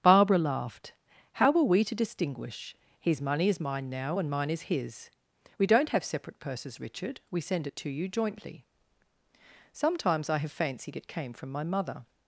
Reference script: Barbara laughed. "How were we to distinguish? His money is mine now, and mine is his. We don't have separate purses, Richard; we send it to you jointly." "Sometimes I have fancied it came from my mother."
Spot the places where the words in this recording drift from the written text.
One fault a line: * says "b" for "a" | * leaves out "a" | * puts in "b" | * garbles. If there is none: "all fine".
all fine